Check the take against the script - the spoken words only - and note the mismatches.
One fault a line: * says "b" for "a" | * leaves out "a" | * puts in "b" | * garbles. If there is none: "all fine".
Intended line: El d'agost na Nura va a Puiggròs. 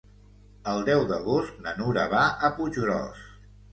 * puts in "deu"